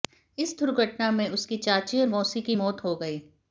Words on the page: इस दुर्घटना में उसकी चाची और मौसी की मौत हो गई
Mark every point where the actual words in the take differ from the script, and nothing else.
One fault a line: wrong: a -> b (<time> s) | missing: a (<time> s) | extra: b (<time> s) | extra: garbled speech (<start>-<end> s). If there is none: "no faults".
no faults